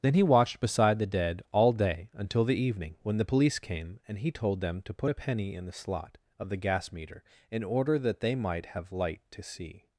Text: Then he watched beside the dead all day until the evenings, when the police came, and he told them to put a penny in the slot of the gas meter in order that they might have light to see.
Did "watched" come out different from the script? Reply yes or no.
no